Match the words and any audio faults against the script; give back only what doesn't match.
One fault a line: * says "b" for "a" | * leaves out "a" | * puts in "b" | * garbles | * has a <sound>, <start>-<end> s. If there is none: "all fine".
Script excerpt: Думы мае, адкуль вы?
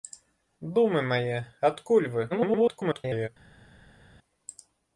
* garbles